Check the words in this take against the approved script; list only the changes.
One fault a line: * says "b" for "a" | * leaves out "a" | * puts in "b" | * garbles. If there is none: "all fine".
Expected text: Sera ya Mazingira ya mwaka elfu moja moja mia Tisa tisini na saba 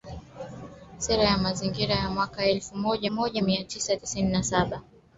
all fine